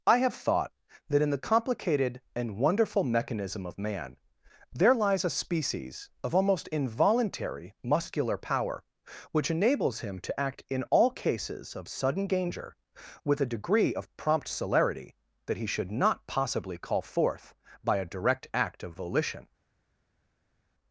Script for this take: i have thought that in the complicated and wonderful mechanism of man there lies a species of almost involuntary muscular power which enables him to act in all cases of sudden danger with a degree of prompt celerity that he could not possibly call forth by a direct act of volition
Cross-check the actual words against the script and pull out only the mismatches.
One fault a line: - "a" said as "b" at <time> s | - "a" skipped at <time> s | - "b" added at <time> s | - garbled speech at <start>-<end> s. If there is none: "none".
- "could" said as "should" at 15.7 s